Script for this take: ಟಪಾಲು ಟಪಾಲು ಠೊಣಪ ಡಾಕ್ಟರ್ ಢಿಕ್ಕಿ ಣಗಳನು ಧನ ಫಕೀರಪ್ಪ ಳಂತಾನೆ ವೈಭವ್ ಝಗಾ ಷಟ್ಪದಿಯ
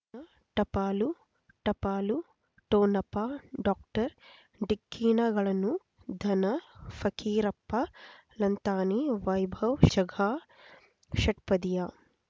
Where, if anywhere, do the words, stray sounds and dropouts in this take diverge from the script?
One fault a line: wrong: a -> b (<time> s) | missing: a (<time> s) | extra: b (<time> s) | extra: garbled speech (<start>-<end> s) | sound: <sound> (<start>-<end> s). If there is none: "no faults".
no faults